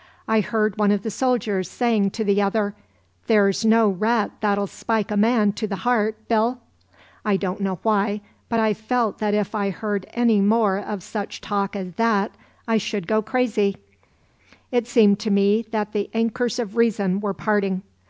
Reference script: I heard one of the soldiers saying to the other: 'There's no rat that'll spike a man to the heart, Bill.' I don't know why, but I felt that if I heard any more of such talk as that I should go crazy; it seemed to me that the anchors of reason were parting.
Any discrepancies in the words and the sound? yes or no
no